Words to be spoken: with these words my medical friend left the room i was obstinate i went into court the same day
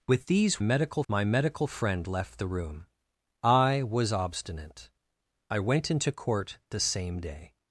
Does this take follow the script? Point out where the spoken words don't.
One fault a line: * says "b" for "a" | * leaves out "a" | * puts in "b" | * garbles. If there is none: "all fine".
* says "medical" for "words"